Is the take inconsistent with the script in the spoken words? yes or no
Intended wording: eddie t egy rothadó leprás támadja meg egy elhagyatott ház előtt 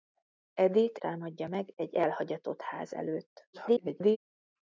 yes